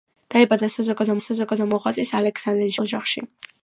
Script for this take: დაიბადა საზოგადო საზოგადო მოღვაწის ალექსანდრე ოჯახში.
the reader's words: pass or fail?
pass